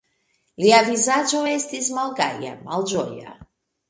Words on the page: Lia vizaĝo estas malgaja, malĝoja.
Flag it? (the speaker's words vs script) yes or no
yes